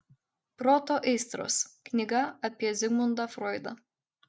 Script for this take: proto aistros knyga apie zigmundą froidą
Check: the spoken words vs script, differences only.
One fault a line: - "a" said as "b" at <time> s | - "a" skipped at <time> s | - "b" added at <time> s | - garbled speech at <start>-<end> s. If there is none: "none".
none